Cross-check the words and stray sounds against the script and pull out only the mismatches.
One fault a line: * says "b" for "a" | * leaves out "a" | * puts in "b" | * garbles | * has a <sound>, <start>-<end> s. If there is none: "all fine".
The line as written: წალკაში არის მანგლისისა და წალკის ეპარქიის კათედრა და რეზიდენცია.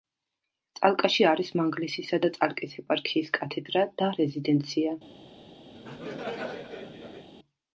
* has a laugh, 5.7-7.3 s